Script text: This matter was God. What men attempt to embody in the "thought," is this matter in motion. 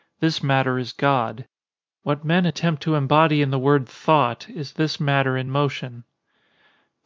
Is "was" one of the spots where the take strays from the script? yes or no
yes